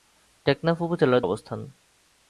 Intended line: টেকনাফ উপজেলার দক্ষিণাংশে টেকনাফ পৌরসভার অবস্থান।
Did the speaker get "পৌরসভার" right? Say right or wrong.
wrong